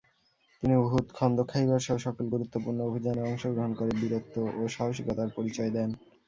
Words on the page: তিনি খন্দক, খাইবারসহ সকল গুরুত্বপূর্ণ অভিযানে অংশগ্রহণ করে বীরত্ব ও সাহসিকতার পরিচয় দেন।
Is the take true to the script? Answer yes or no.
no